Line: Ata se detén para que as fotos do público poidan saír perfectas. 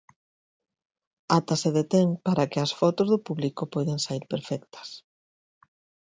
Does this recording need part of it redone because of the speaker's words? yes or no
no